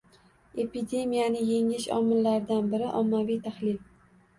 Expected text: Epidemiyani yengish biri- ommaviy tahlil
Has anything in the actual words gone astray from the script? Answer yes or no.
yes